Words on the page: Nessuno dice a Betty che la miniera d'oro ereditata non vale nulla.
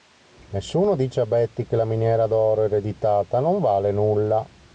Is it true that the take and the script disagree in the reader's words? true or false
false